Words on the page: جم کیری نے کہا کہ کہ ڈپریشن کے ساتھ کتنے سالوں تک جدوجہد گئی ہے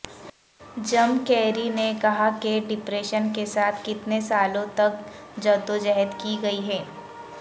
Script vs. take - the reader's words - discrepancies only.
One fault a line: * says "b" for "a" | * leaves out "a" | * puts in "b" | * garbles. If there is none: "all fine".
* leaves out "کہ"
* puts in "کی"